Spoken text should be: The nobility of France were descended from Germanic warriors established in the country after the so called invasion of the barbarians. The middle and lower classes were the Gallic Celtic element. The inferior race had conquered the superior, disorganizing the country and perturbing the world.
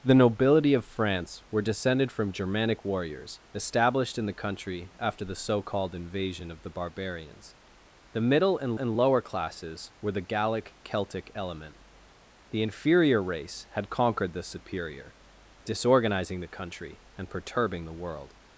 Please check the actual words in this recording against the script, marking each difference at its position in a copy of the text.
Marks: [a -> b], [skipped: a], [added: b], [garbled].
The nobility of France were descended from Germanic warriors established in the country after the so called invasion of the barbarians. The middle and [added: and] lower classes were the Gallic Celtic element. The inferior race had conquered the superior, disorganizing the country and perturbing the world.